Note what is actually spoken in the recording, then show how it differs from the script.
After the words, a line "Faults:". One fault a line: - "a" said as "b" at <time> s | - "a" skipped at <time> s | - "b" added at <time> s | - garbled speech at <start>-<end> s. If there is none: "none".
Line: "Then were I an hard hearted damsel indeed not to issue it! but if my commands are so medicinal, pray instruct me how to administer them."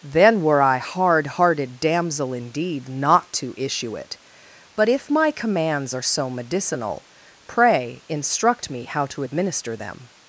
"Then were I hard hearted damsel indeed not to issue it! but if my commands are so medicinal, pray instruct me how to administer them."
Faults:
- "an" skipped at 0.8 s